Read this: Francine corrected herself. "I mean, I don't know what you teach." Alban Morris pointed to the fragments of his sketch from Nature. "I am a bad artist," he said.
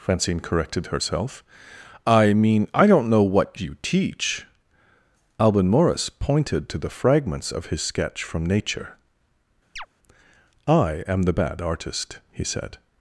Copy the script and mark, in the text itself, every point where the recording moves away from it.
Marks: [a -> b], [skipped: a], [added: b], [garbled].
Francine corrected herself. "I mean, I don't know what you teach." Alban Morris pointed to the fragments of his sketch from Nature. "I am [a -> the] bad artist," he said.